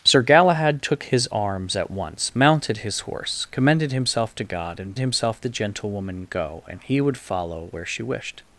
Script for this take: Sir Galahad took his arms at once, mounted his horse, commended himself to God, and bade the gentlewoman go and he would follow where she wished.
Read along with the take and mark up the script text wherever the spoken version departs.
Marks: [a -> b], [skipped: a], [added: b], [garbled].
Sir Galahad took his arms at once, mounted his horse, commended himself to God, and [bade -> himself] the gentlewoman go and he would follow where she wished.